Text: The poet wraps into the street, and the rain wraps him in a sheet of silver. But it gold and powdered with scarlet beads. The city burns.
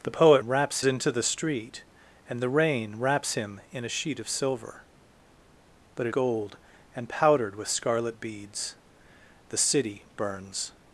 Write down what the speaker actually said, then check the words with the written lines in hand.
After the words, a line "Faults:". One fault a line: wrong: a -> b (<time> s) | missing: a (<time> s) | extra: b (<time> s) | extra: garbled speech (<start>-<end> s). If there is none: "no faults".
The poet wraps into the street, and the rain wraps him in a sheet of silver. But it gold and powdered with scarlet beads. The city burns.
Faults:
no faults